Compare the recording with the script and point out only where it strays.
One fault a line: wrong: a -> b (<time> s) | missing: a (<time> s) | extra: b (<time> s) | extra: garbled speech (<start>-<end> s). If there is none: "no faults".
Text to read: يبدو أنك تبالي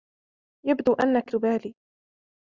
no faults